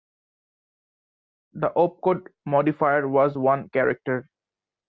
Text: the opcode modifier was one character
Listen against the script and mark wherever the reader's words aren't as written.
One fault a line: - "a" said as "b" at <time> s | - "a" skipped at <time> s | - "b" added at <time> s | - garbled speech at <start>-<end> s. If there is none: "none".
none